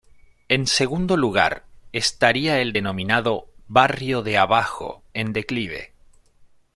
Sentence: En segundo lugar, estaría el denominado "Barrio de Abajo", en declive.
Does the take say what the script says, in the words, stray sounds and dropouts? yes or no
yes